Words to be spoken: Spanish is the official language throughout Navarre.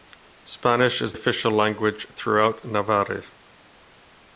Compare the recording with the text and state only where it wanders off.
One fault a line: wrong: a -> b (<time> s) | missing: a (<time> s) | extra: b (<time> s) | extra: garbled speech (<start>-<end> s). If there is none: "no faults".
missing: the (1.1 s)